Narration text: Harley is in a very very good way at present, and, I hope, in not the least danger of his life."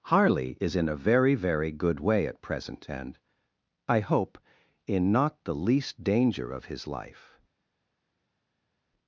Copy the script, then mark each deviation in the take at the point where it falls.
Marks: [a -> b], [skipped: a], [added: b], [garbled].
Harley is in a very very good way at present, and, I hope, in not the least danger of his life."